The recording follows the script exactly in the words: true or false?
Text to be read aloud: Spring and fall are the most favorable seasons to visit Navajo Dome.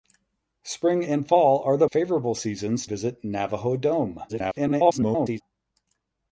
false